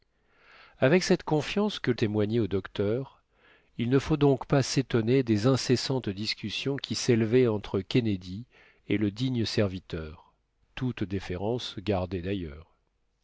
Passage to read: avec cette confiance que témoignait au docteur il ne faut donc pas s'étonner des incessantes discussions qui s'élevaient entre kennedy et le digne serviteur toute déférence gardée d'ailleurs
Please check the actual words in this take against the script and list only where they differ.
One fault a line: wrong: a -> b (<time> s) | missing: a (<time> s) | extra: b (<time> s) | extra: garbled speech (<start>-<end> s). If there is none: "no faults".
no faults